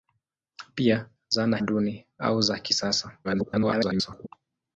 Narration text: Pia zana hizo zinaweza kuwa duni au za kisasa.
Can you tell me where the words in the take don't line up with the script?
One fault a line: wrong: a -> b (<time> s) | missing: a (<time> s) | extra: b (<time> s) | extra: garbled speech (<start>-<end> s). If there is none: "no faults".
missing: hizo zinaweza kuwa (1.6 s)
extra: garbled speech (3.2-4.3 s)